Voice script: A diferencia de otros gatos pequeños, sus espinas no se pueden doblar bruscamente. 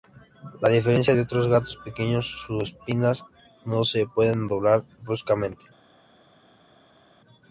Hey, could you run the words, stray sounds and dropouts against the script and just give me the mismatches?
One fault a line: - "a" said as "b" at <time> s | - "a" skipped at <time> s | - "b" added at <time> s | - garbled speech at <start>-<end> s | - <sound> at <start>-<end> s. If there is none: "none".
none